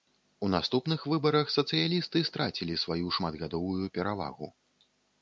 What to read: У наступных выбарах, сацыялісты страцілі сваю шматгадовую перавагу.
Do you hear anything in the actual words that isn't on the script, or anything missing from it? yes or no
no